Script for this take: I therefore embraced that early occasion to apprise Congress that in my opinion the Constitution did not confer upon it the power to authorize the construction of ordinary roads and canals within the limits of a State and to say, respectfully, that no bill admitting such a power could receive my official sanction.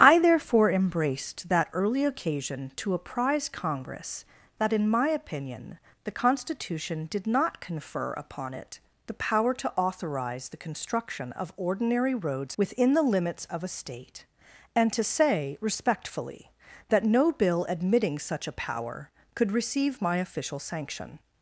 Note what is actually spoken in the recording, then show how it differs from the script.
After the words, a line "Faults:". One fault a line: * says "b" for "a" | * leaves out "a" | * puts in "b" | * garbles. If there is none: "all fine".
I therefore embraced that early occasion to apprise Congress that in my opinion the Constitution did not confer upon it the power to authorize the construction of ordinary roads within the limits of a State and to say, respectfully, that no bill admitting such a power could receive my official sanction.
Faults:
* leaves out "and canals"